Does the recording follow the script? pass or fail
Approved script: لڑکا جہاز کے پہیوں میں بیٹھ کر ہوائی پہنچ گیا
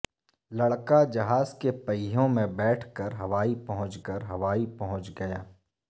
fail